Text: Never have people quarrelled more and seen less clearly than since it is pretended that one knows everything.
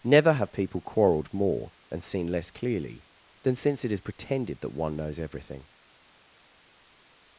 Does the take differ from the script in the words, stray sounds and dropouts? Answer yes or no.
no